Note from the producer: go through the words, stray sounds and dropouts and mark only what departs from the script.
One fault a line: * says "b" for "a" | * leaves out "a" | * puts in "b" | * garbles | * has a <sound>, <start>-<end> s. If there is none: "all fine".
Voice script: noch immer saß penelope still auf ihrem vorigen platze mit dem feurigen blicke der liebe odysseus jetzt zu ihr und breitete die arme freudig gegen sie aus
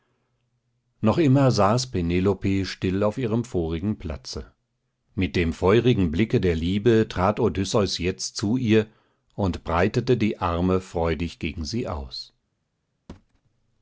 * puts in "trat"
* has a thud, 13.1-13.4 s